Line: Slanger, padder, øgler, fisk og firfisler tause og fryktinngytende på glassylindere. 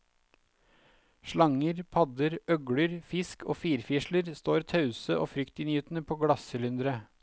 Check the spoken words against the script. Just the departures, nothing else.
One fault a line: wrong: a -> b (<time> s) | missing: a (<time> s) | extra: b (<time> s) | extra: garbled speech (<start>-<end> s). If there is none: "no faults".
extra: står (4.3 s)